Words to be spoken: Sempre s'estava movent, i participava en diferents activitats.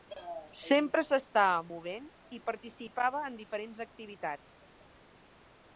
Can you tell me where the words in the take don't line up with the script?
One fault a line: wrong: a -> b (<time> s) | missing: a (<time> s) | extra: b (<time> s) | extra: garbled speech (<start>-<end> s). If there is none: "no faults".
no faults